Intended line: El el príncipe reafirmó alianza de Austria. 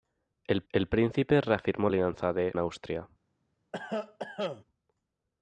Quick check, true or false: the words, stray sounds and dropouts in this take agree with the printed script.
false